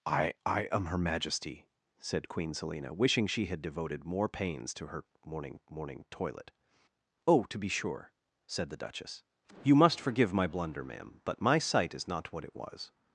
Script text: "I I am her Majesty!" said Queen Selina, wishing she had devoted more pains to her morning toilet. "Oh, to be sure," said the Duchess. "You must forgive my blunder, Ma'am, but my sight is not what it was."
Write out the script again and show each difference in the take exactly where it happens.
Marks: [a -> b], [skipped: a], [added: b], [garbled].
"I I am her Majesty!" said Queen Selina, wishing she had devoted more pains to her morning [added: morning] toilet. "Oh, to be sure," said the Duchess. "You must forgive my blunder, Ma'am, but my sight is not what it was."